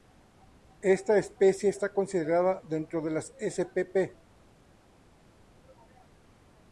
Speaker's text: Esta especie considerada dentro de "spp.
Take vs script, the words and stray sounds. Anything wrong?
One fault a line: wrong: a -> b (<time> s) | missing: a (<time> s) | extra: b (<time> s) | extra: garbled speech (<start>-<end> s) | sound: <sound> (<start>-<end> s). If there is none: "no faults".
extra: está (1.7 s)
extra: las (3.1 s)